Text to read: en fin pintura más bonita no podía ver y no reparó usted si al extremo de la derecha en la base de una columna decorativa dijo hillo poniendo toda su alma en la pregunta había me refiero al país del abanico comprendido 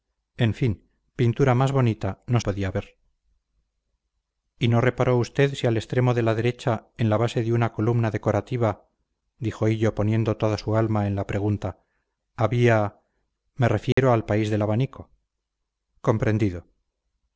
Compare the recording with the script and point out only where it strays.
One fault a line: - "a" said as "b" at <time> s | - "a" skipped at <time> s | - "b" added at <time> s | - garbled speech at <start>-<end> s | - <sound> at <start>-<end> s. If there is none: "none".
- dropout at 13.9-14.0 s